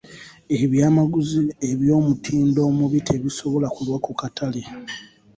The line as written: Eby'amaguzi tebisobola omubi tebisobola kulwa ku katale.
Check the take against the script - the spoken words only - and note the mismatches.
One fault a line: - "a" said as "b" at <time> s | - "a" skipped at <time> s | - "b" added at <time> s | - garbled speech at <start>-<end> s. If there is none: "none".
- "tebisobola" said as "eby'omutindo" at 1.7 s